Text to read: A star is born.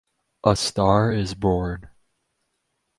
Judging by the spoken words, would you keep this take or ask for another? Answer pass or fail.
pass